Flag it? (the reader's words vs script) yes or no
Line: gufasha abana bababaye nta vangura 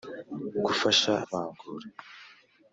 yes